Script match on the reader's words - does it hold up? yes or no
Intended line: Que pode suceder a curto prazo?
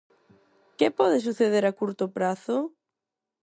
yes